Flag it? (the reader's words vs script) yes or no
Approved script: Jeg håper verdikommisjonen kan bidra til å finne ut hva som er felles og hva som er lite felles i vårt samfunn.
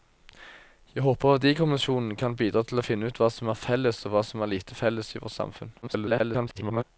yes